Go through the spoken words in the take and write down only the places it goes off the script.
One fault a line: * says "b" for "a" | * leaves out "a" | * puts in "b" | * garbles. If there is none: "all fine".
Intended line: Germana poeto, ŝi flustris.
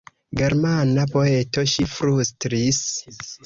all fine